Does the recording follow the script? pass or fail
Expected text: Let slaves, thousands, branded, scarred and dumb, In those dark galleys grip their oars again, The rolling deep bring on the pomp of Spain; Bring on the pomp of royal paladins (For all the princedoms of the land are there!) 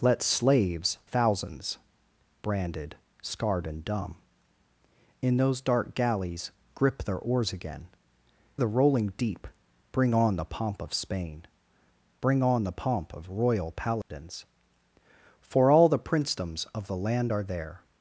pass